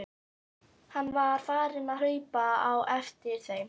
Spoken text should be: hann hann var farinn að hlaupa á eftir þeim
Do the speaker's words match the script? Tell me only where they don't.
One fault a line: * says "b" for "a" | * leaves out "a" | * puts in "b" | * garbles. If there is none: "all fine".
* leaves out "hann"